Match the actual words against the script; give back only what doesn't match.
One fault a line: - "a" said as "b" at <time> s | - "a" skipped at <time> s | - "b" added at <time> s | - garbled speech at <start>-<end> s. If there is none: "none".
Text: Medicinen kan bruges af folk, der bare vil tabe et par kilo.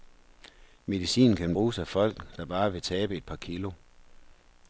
none